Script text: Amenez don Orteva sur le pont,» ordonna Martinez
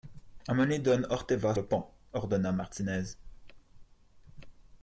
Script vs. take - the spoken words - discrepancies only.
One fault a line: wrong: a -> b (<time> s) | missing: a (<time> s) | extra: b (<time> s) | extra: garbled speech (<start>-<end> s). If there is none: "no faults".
missing: sur (1.5 s)